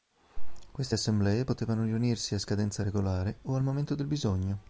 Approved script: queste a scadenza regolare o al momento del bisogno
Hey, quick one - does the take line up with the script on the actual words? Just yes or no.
no